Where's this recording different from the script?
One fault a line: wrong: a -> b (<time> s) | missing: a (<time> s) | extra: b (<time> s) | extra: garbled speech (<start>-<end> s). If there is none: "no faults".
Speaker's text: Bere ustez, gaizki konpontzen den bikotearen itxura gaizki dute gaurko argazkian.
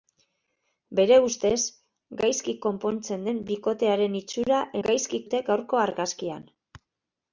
no faults